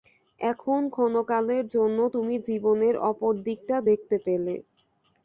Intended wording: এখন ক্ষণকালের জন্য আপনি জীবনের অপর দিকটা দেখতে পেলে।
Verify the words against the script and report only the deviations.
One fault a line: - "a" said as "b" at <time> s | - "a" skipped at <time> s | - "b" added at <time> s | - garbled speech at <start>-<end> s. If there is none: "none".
- "আপনি" said as "তুমি" at 2.1 s